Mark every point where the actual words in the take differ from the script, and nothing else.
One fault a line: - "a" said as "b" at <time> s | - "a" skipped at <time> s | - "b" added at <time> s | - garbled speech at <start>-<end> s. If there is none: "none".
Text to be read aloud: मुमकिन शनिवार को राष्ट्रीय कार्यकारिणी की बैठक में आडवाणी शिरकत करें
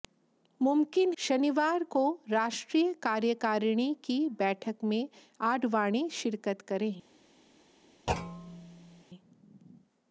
none